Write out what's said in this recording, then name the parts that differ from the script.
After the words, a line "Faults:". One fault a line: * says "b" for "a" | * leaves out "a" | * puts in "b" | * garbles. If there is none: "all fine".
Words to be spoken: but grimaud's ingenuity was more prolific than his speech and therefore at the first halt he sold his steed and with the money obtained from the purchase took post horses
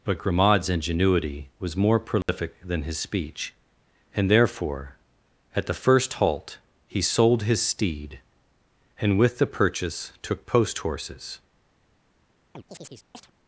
but grimaud's ingenuity was more prolific than his speech and therefore at the first halt he sold his steed and with the purchase took post horses
Faults:
* leaves out "money obtained from the"